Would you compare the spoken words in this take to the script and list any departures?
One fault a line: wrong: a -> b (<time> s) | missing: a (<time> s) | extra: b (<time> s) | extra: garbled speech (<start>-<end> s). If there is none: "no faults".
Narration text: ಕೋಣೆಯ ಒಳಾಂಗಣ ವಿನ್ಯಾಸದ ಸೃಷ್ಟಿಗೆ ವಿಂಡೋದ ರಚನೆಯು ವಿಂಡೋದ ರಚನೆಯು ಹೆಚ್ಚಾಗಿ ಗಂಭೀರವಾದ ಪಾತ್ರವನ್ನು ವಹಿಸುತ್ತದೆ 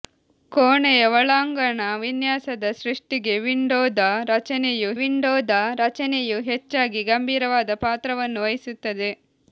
no faults